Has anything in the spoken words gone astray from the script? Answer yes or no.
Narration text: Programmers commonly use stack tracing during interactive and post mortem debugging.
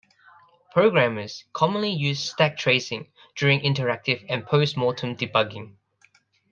no